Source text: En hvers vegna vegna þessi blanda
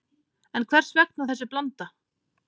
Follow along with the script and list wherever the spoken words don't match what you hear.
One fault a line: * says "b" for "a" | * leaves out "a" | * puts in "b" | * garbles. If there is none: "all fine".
* leaves out "vegna"